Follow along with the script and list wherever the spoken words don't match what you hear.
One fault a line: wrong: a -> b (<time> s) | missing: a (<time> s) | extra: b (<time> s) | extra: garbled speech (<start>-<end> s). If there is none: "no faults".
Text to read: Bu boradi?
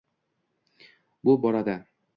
no faults